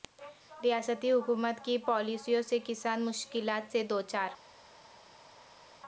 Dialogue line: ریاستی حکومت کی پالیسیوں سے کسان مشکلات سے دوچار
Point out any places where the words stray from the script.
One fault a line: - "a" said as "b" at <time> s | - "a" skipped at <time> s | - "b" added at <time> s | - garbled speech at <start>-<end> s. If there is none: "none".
none